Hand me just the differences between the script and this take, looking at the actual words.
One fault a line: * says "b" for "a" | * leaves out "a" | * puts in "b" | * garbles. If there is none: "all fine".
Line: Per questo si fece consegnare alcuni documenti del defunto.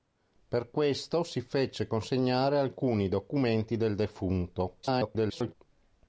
* garbles